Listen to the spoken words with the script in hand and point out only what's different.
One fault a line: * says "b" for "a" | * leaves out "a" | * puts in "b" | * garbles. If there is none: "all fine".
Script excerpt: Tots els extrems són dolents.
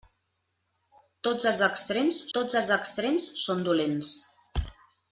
* puts in "tots els extrems"